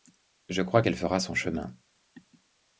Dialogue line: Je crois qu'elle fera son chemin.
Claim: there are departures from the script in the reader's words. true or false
false